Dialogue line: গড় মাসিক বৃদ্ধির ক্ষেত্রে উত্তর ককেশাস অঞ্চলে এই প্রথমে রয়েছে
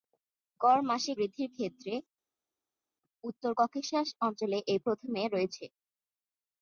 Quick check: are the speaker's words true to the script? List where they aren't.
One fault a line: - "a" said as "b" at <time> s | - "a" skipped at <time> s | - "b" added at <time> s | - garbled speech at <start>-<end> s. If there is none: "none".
none